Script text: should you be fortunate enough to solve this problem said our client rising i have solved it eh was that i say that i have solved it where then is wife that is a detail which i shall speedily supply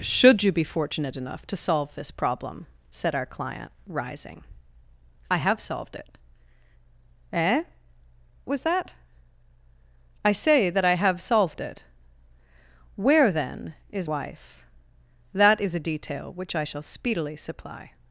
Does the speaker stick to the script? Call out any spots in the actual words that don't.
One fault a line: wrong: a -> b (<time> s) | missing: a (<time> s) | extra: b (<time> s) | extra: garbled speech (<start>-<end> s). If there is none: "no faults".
no faults